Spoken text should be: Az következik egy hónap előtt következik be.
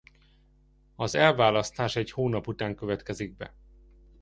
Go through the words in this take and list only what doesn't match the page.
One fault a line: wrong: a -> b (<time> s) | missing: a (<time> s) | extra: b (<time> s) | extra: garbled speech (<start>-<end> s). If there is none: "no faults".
wrong: következik -> elválasztás (1.1 s)
wrong: előtt -> után (2.5 s)